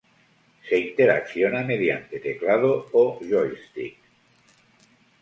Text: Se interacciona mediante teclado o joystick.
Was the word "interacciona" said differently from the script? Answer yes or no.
no